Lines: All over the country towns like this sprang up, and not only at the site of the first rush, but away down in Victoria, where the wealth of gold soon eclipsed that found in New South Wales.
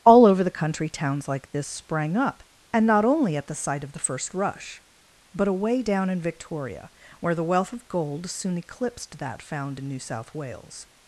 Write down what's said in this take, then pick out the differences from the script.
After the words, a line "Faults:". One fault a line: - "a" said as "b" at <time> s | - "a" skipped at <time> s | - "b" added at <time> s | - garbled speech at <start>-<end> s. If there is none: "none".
All over the country towns like this sprang up, and not only at the site of the first rush, but away down in Victoria, where the wealth of gold soon eclipsed that found in New South Wales.
Faults:
none